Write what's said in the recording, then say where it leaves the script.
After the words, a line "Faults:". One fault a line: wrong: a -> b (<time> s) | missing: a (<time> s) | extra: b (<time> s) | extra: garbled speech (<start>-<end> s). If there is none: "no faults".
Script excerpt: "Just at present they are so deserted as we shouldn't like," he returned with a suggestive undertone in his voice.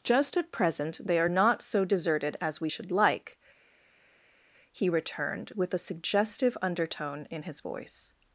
"Just at present they are not so deserted as we should like," he returned with a suggestive undertone in his voice.
Faults:
extra: not (1.3 s)
wrong: shouldn't -> should (2.7 s)